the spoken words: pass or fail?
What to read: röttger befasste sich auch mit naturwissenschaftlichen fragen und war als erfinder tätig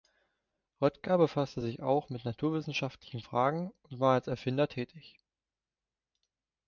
pass